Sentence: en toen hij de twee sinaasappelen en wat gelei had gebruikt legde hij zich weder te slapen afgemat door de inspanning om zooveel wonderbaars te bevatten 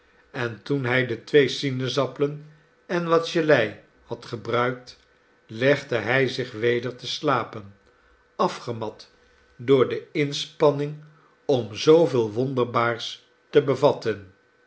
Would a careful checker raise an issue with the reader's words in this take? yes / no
no